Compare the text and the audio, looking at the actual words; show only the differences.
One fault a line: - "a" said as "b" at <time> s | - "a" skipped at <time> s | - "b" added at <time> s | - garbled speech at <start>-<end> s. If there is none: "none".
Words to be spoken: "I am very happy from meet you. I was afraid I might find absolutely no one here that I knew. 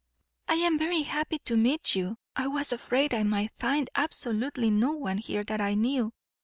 - "from" said as "to" at 1.4 s